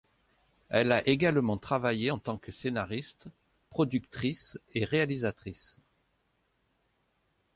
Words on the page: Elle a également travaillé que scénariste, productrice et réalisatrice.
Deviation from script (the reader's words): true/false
true